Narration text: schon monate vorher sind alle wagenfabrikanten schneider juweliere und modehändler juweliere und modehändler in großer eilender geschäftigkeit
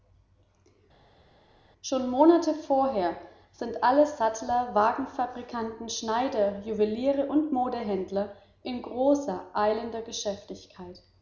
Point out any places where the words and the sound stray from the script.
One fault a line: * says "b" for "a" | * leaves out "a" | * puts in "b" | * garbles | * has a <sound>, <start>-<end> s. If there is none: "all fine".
* puts in "sattler"
* leaves out "juweliere und modehändler"